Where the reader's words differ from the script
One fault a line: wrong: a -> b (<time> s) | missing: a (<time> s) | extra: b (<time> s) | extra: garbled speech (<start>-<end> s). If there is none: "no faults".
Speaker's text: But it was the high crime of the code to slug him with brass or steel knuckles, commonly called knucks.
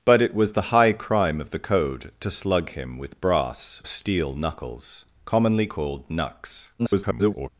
missing: or (3.8 s)
extra: garbled speech (6.8-7.5 s)